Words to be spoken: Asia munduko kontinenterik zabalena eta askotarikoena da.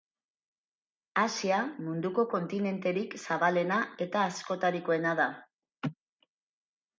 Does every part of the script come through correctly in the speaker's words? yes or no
yes